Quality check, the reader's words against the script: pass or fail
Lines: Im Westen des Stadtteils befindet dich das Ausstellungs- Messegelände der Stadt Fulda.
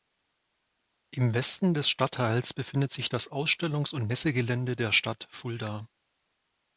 fail